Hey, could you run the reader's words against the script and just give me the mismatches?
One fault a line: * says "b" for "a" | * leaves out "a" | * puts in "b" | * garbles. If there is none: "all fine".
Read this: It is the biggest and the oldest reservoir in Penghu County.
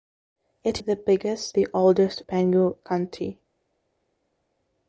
* leaves out "is"
* leaves out "and"
* leaves out "reservoir in"